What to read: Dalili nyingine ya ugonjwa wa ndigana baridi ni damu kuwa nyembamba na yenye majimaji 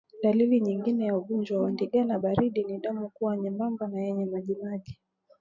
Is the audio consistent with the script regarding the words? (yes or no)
yes